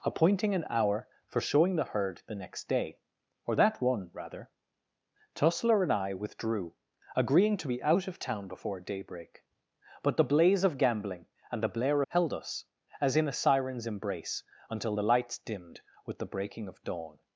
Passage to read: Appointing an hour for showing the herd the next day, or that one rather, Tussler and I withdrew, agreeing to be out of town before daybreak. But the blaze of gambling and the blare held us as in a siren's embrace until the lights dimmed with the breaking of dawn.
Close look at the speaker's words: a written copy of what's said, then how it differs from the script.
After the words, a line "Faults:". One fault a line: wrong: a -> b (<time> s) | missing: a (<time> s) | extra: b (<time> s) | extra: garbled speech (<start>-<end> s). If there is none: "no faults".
Appointing an hour for showing the herd the next day, or that one rather, Tussler and I withdrew, agreeing to be out of town before daybreak. But the blaze of gambling and the blare held us as in a siren's embrace until the lights dimmed with the breaking of dawn.
Faults:
no faults